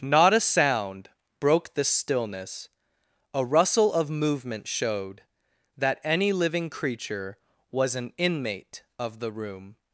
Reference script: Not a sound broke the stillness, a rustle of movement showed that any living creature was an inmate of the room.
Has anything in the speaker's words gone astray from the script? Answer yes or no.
no